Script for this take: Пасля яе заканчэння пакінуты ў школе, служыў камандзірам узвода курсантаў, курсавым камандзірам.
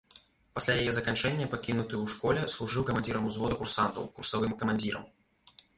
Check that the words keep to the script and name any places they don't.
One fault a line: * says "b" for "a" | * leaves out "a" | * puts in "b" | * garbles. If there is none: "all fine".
all fine